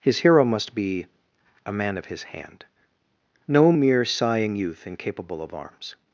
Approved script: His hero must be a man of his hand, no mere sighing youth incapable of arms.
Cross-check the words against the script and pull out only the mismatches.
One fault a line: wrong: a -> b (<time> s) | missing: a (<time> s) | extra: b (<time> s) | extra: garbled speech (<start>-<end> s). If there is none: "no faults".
no faults